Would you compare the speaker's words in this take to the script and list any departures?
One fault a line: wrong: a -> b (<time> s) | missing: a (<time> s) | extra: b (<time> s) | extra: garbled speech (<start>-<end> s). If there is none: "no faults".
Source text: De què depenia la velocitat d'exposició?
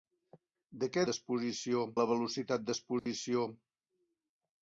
wrong: depenia -> d'exposició (1.1 s)